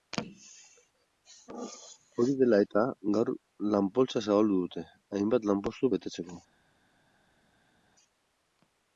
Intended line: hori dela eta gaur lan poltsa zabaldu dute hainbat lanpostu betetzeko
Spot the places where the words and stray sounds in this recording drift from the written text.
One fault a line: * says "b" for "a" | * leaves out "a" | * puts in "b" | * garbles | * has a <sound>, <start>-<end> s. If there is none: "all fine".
all fine